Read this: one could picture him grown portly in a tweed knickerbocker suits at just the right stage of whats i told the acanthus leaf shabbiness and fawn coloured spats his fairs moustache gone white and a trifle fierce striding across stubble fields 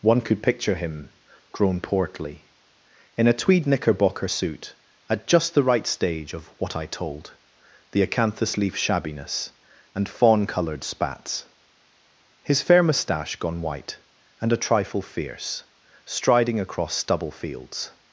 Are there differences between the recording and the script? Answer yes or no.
yes